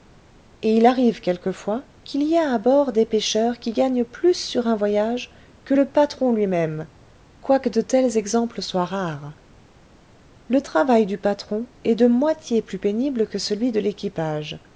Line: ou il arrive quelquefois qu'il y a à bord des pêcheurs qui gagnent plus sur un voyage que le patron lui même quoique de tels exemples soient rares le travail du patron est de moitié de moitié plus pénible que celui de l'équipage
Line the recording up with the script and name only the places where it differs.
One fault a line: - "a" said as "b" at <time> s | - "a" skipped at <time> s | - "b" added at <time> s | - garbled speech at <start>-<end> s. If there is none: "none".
- "ou" said as "et" at 0.6 s
- "de moitié" skipped at 12.6 s